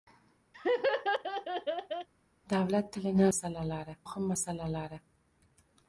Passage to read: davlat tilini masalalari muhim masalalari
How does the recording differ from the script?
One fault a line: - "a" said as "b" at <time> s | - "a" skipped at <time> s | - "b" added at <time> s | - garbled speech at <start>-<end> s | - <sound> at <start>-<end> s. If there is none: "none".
- laugh at 0.5-2.1 s